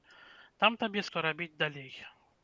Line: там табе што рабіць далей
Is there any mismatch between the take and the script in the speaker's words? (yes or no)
no